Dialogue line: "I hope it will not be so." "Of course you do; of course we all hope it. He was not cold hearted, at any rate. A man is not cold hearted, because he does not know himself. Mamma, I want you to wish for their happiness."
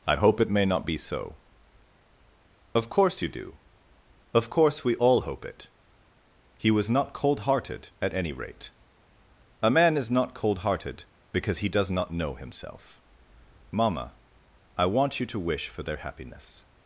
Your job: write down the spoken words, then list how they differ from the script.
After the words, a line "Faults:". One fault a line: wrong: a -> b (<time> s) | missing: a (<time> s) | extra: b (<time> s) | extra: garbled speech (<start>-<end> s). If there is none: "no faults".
"I hope it may not be so." "Of course you do; of course we all hope it. He was not cold hearted, at any rate. A man is not cold hearted, because he does not know himself. Mamma, I want you to wish for their happiness."
Faults:
wrong: will -> may (0.5 s)